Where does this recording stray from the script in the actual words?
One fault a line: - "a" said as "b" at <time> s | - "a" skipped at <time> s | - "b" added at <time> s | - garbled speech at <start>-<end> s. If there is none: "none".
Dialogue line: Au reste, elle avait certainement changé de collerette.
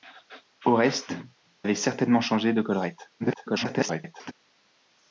- "elle" skipped at 1.1 s
- garbled speech at 3.2-4.3 s